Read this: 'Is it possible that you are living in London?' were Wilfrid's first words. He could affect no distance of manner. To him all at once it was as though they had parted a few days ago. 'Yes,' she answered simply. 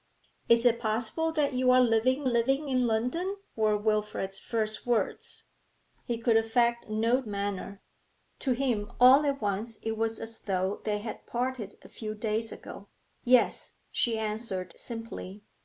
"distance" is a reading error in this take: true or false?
true